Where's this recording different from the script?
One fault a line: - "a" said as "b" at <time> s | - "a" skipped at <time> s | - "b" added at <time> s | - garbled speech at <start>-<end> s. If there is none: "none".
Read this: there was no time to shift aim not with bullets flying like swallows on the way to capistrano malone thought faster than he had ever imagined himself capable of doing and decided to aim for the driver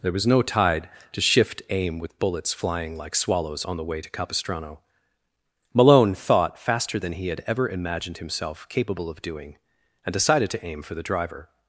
- "time" said as "tide" at 0.4 s
- "not" skipped at 2.0 s